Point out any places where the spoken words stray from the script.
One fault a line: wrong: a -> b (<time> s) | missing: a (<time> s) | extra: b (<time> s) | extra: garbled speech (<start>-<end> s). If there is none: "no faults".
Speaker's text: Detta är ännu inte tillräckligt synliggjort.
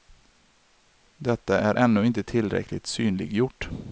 no faults